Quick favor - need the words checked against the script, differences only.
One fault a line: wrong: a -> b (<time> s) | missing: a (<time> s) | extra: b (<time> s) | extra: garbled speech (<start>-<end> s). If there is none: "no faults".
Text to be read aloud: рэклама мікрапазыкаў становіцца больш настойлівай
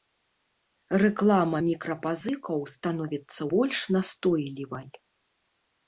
no faults